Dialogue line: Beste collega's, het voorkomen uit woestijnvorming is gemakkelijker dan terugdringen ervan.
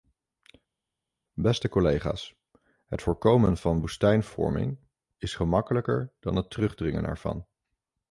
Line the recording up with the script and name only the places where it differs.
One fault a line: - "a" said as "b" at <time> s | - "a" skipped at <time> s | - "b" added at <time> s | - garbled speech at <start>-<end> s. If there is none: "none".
- "uit" said as "van" at 3.6 s
- "het" added at 6.4 s